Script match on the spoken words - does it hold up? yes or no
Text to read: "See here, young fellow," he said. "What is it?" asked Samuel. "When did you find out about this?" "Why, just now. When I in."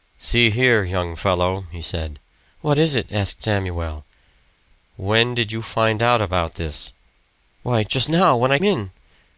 yes